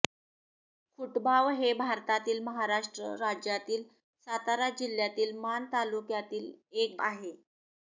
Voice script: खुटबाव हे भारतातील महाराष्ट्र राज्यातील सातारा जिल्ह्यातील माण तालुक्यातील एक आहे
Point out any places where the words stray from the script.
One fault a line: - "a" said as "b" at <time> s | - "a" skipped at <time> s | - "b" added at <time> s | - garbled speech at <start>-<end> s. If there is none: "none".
none